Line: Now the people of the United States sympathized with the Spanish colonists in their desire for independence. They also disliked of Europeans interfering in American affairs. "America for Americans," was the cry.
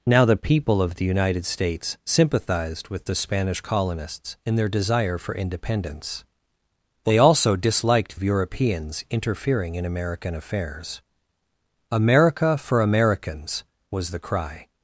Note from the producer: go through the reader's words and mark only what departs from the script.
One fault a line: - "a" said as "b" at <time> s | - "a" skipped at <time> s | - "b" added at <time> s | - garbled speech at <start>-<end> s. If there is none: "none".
none